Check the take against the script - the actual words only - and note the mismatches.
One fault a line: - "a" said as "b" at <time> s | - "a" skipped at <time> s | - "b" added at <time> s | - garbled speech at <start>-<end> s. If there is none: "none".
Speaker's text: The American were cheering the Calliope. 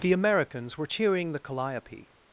- "American" said as "Americans" at 0.1 s